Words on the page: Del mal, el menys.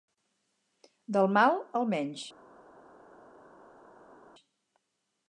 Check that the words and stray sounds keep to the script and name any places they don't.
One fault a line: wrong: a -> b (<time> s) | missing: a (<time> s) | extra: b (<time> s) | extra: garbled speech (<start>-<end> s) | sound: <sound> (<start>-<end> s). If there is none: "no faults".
no faults